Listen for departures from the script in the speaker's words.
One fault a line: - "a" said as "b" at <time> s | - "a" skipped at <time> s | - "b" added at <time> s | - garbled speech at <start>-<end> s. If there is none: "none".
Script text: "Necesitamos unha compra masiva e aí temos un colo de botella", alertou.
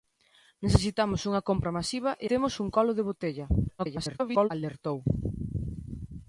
- "aí" skipped at 2.3 s
- garbled speech at 3.8-4.5 s